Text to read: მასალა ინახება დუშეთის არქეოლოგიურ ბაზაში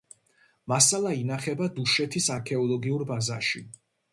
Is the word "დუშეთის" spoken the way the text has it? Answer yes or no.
yes